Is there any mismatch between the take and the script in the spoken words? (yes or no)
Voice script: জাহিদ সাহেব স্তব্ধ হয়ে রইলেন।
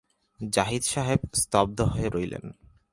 no